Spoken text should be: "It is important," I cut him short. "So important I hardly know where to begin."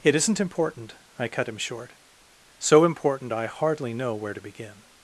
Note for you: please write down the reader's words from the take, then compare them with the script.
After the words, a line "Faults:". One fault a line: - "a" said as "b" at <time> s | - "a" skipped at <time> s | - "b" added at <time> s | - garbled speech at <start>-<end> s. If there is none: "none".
"It isn't important," I cut him short. "So important I hardly know where to begin."
Faults:
- "is" said as "isn't" at 0.1 s